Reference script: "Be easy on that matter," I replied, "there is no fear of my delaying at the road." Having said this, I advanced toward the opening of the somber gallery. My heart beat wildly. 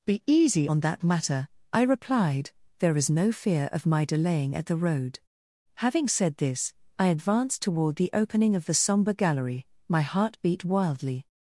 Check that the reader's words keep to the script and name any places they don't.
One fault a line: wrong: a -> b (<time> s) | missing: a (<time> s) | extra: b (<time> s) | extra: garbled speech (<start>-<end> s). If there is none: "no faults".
no faults